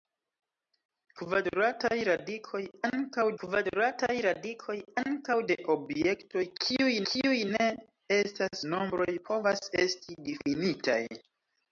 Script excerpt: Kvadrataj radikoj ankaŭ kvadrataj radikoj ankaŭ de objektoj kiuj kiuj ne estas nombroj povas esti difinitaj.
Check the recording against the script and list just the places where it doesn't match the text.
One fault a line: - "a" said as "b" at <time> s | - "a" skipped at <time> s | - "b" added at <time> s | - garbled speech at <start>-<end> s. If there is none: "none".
none